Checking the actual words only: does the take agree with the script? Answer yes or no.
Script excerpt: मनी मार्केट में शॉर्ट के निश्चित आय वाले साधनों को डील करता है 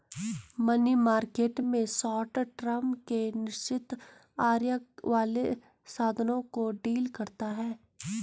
no